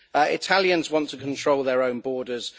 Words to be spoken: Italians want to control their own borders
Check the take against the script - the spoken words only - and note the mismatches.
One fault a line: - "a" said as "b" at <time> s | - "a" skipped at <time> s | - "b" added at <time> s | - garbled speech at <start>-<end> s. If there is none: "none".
none